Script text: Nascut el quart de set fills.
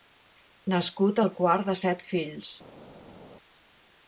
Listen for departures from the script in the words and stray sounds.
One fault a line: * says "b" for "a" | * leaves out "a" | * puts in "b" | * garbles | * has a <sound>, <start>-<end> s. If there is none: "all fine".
all fine